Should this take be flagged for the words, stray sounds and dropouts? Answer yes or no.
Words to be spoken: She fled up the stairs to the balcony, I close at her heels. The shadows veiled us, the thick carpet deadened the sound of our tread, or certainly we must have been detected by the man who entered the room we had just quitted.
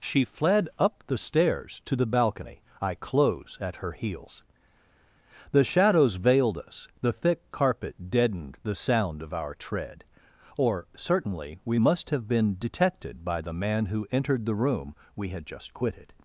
no